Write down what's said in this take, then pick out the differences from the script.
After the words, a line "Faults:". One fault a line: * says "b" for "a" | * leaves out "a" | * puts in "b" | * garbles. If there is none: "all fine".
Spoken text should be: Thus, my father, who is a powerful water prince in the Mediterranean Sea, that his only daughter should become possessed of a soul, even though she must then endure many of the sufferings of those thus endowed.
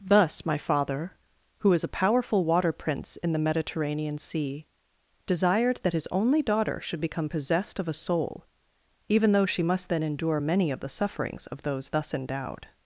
Thus, my father, who is a powerful water prince in the Mediterranean Sea, desired that his only daughter should become possessed of a soul, even though she must then endure many of the sufferings of those thus endowed.
Faults:
* puts in "desired"